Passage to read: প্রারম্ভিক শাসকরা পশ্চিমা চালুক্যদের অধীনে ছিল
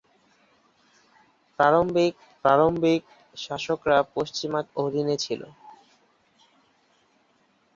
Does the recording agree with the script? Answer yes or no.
no